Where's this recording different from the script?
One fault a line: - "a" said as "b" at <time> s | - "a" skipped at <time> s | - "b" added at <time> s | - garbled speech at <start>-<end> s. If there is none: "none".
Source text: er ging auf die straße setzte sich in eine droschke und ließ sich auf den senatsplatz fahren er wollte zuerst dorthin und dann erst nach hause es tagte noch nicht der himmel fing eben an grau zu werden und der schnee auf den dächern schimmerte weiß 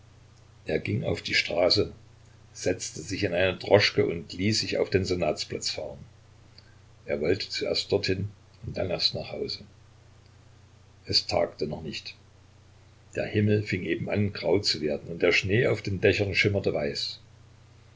none